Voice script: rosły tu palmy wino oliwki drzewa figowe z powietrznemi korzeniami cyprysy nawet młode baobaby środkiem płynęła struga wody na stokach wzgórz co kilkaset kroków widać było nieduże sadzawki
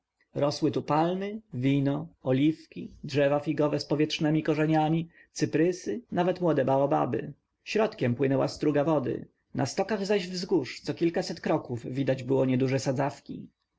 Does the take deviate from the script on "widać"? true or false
false